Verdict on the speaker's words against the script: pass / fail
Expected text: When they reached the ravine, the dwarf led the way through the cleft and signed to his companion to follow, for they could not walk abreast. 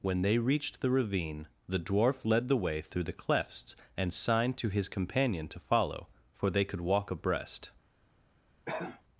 fail